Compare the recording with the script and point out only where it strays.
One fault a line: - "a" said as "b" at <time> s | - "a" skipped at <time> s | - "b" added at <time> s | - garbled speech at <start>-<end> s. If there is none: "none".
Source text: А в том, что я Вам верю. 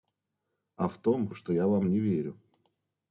- "не" added at 1.9 s